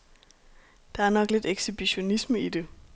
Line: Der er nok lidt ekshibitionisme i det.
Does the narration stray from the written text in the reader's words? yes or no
no